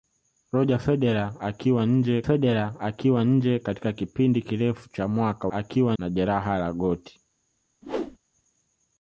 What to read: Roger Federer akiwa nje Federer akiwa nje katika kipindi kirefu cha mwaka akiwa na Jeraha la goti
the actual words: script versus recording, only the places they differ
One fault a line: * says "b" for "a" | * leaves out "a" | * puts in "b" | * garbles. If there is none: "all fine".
all fine